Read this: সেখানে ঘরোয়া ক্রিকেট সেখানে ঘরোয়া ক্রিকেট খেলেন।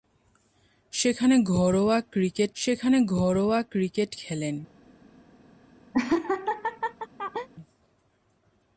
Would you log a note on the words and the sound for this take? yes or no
yes